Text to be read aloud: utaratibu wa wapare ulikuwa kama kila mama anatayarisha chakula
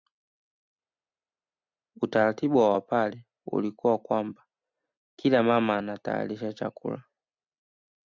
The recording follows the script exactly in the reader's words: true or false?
false